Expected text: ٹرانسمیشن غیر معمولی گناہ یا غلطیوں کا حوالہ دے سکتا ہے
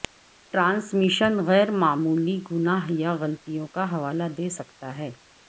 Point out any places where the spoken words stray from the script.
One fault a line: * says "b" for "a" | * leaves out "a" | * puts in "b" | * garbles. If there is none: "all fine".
all fine